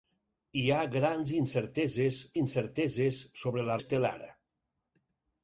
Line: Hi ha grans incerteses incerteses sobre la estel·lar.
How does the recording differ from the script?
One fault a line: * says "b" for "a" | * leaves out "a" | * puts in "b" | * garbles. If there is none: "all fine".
all fine